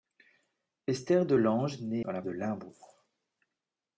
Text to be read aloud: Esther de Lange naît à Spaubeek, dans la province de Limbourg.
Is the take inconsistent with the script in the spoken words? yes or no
yes